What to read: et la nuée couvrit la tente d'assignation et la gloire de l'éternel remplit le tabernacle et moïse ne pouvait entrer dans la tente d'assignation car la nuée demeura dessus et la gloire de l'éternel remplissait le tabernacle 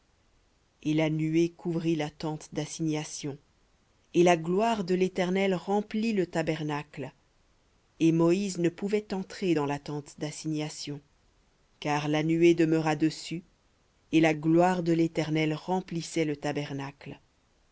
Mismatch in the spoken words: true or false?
false